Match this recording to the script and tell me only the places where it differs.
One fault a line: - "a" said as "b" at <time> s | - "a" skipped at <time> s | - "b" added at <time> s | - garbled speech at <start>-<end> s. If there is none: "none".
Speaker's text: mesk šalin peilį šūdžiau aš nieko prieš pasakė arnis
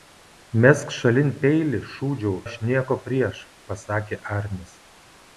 none